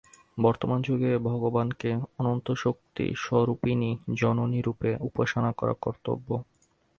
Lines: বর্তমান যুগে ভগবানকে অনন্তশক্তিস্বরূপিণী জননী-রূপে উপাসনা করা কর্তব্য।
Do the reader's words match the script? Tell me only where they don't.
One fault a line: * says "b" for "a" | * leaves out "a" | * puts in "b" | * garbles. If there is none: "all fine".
all fine